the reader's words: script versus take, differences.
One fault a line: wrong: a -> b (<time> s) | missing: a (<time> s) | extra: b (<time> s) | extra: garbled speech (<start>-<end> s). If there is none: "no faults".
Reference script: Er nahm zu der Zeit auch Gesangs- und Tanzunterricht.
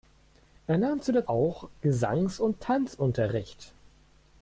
missing: Zeit (1.3 s)